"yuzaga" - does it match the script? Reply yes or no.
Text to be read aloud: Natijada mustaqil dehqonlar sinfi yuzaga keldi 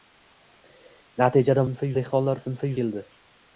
no